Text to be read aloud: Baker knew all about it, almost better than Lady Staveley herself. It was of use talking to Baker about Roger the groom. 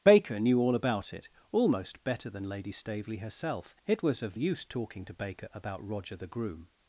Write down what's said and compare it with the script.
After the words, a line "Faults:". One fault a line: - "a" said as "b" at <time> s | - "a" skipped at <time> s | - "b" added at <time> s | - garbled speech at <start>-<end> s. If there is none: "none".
Baker knew all about it, almost better than Lady Staveley herself. It was of use talking to Baker about Roger the groom.
Faults:
none